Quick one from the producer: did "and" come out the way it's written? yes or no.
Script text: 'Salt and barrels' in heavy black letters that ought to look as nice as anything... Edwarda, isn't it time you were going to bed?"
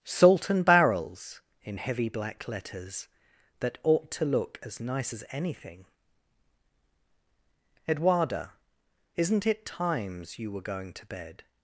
yes